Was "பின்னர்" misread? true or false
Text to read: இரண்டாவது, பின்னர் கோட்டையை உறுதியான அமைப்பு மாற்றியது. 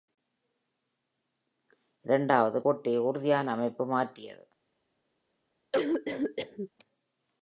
true